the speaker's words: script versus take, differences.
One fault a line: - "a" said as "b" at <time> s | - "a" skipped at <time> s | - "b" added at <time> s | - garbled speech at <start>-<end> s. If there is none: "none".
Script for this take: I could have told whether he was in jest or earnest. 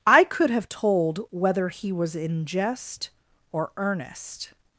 none